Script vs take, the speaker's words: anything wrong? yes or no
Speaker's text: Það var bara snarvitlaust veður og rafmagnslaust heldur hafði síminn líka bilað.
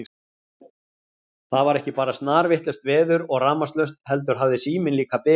yes